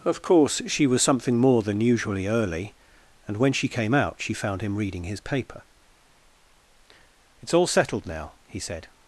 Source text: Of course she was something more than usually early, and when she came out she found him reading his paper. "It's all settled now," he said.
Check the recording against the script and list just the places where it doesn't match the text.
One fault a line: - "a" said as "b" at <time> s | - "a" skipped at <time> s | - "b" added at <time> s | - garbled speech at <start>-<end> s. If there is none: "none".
none